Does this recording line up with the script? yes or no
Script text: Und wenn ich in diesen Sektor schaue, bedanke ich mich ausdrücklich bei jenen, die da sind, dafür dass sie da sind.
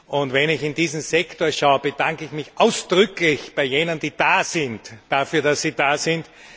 yes